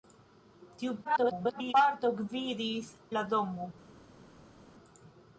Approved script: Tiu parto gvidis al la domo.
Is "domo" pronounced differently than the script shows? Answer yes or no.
no